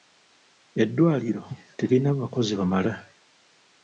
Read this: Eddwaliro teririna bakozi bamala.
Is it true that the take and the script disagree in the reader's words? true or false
false